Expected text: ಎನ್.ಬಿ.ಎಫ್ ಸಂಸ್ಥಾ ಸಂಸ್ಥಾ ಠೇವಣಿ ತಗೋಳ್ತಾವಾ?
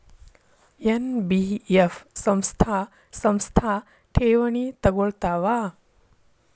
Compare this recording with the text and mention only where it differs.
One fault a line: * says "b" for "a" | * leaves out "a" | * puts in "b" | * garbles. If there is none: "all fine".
all fine